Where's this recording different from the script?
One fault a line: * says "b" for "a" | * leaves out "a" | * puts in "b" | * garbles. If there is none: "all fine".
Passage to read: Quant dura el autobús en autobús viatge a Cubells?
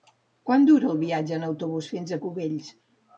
* says "viatge" for "autobús"
* says "fins" for "viatge"